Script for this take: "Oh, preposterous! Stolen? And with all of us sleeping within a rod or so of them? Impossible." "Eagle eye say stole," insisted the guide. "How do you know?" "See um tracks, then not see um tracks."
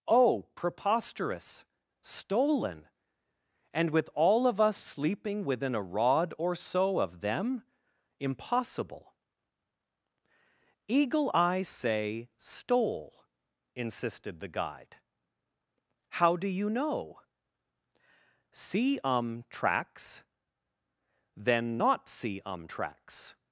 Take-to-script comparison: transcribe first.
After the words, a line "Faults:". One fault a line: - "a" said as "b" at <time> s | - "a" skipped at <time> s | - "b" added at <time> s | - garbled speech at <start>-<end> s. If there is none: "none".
"Oh, preposterous! Stolen? And with all of us sleeping within a rod or so of them? Impossible." "Eagle eye say stole," insisted the guide. "How do you know?" "See um tracks, then not see um tracks."
Faults:
none